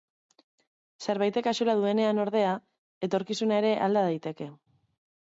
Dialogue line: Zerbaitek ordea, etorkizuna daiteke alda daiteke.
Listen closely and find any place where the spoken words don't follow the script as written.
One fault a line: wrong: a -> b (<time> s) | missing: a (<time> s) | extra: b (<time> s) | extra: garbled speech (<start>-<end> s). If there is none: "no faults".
extra: axola duenean (1.5 s)
wrong: daiteke -> ere (3.6 s)